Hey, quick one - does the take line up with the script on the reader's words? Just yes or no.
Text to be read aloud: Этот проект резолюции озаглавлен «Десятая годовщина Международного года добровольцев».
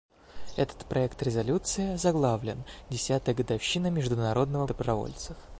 no